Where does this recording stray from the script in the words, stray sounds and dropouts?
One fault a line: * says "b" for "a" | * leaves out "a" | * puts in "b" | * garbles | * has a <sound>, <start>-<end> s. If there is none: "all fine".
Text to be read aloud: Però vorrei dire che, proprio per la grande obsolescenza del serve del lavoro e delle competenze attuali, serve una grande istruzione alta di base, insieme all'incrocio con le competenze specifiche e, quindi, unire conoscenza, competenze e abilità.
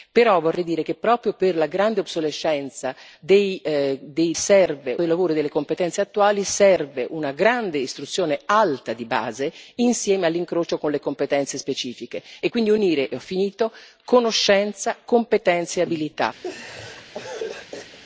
* has a laugh, 16.4-18.0 s